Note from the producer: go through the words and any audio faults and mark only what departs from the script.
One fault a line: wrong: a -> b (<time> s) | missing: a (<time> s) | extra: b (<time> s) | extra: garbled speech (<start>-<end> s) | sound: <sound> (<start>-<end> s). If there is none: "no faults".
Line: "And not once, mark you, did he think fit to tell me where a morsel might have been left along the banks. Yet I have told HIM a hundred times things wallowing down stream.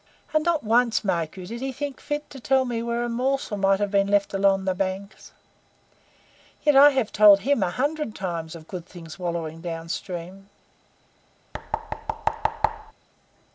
extra: of good (8.5 s)
sound: thud (11.5-12.9 s)